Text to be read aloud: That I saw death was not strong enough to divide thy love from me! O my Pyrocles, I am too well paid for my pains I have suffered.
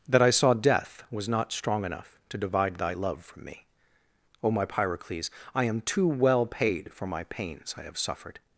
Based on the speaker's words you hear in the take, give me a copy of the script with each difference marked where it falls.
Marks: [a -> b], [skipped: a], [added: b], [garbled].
That I saw death was not strong enough to divide thy love from me! O my Pyrocles, I am too well paid for my pains I have suffered.